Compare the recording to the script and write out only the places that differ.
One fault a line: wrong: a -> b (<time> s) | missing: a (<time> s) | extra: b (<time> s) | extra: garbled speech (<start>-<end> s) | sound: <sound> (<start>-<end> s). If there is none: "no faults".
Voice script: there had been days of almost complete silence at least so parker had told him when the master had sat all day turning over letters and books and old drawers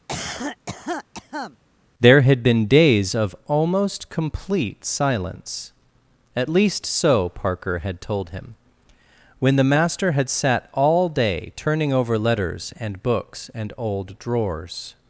sound: cough (0.1-1.6 s)